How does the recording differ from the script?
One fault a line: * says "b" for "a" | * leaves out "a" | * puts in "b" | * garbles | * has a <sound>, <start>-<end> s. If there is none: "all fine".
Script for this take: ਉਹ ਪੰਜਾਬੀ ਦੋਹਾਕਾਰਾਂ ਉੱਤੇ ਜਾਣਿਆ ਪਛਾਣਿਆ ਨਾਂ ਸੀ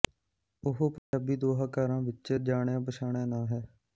* has a dropout, 1.0-1.1 s
* says "ਵਿੱਚ" for "ਉੱਤੇ"
* says "ਹੈ" for "ਸੀ"